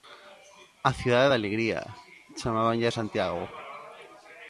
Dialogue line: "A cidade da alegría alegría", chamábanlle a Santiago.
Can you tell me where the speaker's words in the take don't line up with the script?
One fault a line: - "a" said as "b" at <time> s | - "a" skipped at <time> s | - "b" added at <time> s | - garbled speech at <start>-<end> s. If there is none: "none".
- "alegría" skipped at 1.8 s